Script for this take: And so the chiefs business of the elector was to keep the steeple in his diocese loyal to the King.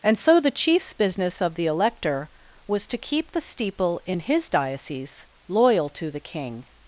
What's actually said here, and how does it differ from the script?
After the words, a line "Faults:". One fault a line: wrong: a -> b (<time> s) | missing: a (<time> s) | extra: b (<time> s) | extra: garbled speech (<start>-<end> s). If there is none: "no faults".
And so the chiefs business of the elector was to keep the steeple in his diocese loyal to the King.
Faults:
no faults